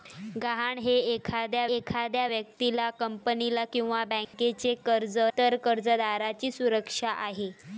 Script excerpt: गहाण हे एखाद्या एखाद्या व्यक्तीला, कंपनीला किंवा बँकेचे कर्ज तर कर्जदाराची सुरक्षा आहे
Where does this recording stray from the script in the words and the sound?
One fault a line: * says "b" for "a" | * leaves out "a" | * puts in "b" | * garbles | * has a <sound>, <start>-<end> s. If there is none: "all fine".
* has a dropout, 4.2-4.3 s